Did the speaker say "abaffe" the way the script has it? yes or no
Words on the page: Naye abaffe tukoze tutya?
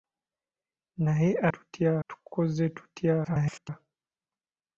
no